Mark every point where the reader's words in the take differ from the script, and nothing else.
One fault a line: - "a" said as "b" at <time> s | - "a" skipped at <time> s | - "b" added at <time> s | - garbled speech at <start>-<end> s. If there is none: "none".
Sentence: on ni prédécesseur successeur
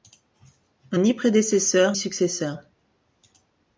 none